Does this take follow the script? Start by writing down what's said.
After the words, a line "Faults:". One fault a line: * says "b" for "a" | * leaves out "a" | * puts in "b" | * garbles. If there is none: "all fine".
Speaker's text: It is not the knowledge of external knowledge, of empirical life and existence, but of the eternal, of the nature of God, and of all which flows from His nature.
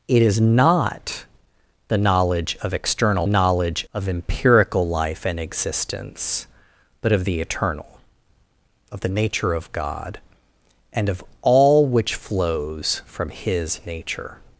It is not the knowledge of external knowledge, of empirical life and existence, but of the eternal, of the nature of God, and of all which flows from His nature.
Faults:
all fine